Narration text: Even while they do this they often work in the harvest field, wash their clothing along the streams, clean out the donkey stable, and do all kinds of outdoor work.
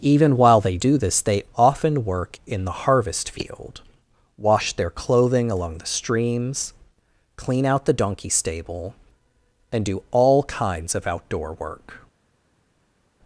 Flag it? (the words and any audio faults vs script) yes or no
no